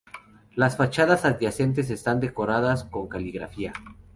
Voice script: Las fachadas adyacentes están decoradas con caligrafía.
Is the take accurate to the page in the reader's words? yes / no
yes